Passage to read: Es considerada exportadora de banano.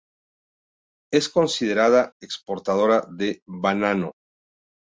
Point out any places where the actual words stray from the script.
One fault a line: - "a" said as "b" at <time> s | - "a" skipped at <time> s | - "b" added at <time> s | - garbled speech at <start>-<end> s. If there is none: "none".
none